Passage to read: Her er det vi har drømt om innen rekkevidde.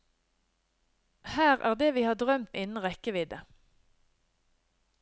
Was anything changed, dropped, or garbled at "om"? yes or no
yes